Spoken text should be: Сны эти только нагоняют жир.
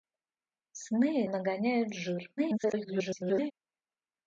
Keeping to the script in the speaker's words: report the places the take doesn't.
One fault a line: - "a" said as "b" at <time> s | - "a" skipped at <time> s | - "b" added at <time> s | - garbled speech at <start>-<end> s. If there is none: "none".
- "эти только" skipped at 1.2 s
- garbled speech at 2.4-3.5 s